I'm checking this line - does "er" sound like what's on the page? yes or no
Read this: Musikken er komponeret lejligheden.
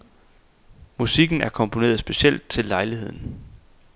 yes